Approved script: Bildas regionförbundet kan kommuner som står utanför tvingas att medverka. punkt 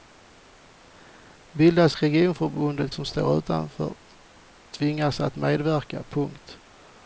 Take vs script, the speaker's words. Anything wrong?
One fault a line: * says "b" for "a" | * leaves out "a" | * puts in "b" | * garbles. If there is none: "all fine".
* leaves out "kan kommuner"